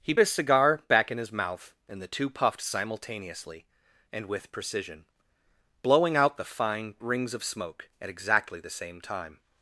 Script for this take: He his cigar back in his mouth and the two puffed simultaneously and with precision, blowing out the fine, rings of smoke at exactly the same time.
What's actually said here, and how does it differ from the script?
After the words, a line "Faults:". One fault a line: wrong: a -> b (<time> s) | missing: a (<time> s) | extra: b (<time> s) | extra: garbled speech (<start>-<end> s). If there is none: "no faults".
He his cigar back in his mouth and the two puffed simultaneously and with precision, blowing out the fine, rings of smoke at exactly the same time.
Faults:
no faults